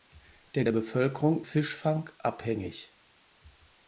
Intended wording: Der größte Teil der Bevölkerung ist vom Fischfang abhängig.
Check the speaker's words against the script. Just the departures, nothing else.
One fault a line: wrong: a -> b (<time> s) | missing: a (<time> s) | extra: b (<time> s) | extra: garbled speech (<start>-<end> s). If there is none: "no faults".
missing: größte Teil (0.7 s)
missing: ist vom (1.4 s)